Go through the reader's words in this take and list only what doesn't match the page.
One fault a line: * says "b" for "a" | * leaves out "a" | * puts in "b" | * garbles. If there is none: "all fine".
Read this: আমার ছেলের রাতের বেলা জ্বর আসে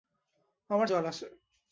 * leaves out "ছেলের রাতের বেলা"